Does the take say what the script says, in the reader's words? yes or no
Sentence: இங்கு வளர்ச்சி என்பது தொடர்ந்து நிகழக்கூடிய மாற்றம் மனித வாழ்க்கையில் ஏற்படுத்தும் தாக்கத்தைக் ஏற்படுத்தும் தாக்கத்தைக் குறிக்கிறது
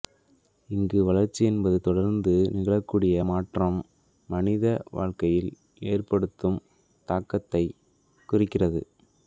no